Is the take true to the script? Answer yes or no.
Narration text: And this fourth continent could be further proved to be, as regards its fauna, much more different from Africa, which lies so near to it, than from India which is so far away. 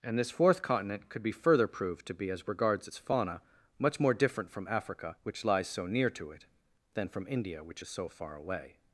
yes